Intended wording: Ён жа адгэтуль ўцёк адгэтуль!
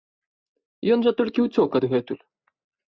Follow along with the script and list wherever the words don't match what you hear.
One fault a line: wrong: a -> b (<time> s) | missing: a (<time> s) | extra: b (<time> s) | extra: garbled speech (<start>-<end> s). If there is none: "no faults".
wrong: адгэтуль -> толькі (1.2 s)